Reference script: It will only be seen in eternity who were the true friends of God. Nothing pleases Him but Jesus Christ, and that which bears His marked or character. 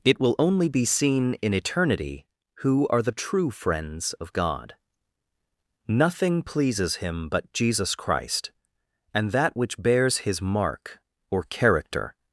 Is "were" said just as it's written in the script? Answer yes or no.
no